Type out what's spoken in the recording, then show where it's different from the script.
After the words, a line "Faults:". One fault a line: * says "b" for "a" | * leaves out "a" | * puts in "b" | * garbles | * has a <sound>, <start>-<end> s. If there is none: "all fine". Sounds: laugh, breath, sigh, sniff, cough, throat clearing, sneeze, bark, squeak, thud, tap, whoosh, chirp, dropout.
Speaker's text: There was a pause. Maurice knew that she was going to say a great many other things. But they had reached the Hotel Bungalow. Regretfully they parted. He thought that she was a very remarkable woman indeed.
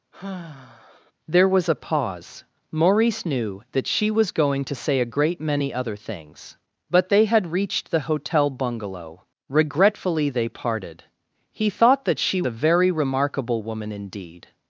There was a pause. Maurice knew that she was going to say a great many other things. But they had reached the Hotel Bungalow. Regretfully they parted. He thought that she a very remarkable woman indeed.
Faults:
* has a sigh, 0.1-1.1 s
* leaves out "was"